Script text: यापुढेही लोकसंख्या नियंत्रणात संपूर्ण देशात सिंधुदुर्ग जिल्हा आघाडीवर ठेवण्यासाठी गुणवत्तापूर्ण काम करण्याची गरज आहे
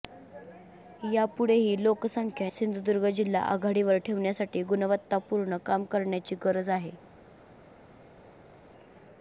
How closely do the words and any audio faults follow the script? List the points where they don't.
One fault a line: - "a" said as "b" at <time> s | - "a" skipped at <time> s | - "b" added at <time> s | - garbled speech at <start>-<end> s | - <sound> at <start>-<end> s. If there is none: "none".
- "नियंत्रणात संपूर्ण देशात" skipped at 2.5 s